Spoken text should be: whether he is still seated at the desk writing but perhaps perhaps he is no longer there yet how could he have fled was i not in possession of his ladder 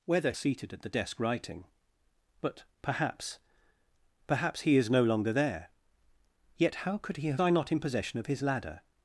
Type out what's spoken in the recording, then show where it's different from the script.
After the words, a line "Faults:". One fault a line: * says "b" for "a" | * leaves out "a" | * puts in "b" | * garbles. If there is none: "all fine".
whether seated at the desk writing but perhaps perhaps he is no longer there yet how could he have i not in possession of his ladder
Faults:
* leaves out "he is still"
* leaves out "fled was"